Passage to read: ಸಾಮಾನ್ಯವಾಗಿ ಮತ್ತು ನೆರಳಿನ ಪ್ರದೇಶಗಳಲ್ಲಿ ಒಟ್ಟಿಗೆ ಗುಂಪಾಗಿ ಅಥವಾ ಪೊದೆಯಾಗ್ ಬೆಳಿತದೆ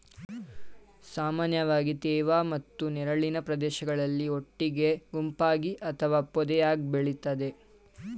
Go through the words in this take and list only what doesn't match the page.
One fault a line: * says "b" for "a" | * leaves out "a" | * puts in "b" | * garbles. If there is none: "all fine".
* puts in "ತೇವ"